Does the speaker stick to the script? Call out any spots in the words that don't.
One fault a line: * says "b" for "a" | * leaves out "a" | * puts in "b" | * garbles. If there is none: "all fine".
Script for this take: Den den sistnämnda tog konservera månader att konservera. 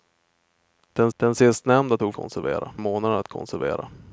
all fine